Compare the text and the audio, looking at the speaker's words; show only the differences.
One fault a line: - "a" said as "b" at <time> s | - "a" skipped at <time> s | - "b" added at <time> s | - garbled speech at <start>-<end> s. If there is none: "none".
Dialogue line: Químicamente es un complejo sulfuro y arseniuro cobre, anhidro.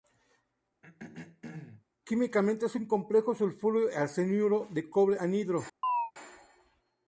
- "de" added at 4.7 s